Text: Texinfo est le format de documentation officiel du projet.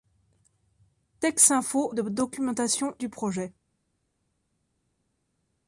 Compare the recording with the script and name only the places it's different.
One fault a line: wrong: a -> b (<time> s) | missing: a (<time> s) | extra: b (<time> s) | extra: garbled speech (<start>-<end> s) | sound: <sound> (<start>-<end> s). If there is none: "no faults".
missing: est le format (1.9 s)
missing: officiel (3.0 s)